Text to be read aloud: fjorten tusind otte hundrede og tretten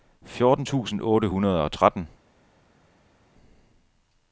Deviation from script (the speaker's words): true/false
false